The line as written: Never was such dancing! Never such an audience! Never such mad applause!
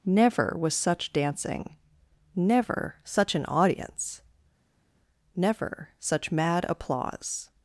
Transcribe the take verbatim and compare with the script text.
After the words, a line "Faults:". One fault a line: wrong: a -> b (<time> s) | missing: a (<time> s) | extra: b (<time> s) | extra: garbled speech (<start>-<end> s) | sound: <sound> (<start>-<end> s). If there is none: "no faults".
Never was such dancing! Never such an audience! Never such mad applause!
Faults:
no faults